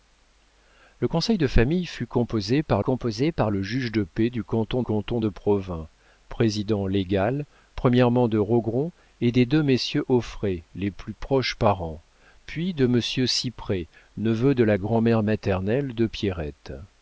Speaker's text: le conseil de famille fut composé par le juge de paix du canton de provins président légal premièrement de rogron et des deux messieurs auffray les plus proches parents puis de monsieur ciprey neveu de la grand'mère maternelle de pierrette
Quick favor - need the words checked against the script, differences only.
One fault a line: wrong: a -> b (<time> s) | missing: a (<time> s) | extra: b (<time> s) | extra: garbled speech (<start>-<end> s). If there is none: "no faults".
extra: composé par (2.8 s)
extra: canton (4.8 s)